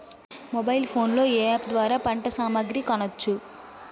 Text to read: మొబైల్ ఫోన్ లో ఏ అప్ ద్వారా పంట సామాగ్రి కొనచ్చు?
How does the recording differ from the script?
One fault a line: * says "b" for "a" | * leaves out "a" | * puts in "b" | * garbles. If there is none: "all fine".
all fine